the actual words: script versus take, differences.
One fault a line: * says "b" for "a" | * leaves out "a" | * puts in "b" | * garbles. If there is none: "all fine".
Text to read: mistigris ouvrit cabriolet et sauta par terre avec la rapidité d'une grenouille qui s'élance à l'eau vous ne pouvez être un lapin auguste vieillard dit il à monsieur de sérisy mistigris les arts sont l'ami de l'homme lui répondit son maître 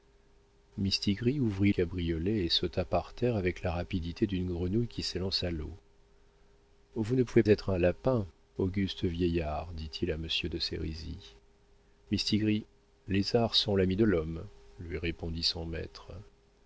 all fine